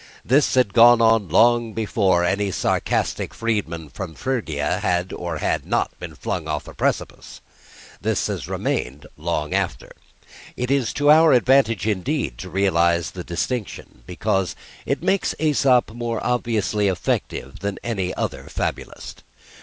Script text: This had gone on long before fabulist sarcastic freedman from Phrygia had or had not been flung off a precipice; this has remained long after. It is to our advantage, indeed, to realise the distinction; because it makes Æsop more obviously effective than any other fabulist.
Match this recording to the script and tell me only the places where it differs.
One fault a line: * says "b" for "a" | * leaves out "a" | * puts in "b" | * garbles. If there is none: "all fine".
* says "any" for "fabulist"